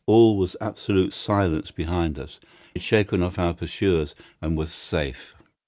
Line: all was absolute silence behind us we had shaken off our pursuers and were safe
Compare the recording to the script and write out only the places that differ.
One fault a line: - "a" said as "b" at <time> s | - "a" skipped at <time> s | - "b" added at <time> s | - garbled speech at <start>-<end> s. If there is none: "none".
- "we" skipped at 2.4 s